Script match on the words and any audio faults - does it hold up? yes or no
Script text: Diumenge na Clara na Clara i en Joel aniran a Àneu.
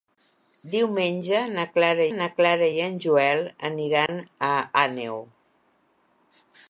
no